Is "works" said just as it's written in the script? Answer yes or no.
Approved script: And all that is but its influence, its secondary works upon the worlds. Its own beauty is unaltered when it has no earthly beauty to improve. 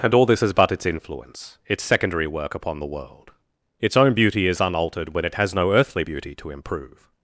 no